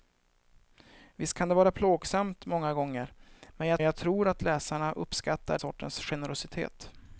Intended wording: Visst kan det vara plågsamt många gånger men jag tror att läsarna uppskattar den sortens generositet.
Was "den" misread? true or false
true